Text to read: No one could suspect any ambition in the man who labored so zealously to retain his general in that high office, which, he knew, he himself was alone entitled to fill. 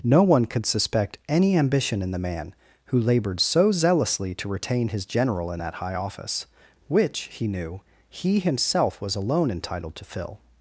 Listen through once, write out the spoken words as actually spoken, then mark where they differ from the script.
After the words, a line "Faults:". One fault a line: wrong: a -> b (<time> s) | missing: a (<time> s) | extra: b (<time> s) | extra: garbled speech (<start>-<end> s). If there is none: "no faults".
No one could suspect any ambition in the man who labored so zealously to retain his general in that high office, which, he knew, he himself was alone entitled to fill.
Faults:
no faults